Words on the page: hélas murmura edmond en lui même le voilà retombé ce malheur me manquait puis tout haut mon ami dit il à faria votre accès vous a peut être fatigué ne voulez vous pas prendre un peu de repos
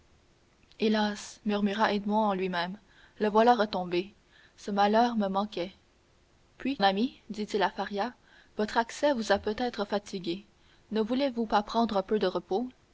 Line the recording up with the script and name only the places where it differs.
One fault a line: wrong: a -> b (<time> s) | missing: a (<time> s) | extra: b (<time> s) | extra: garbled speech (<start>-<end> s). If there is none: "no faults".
missing: tout haut mon (6.8 s)